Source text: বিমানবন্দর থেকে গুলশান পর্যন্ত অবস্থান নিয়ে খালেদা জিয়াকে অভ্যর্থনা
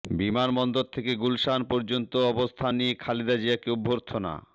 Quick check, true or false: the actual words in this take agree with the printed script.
true